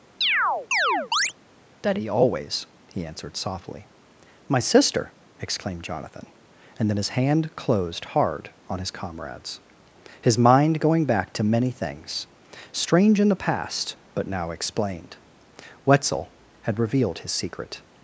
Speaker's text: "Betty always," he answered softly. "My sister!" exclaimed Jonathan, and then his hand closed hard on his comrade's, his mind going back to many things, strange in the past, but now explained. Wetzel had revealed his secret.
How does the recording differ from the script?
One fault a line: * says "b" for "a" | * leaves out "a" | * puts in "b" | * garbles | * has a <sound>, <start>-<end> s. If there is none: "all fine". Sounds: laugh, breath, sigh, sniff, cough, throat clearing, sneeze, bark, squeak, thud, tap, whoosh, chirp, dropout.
* has a chirp, 0.2-1.3 s
* says "Daddy" for "Betty"